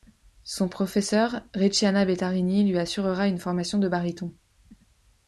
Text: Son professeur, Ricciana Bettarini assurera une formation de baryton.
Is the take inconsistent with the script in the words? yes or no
yes